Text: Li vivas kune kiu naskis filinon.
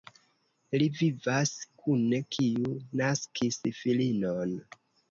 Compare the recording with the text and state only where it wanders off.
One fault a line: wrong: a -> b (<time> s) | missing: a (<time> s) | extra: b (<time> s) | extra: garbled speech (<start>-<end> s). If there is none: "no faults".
no faults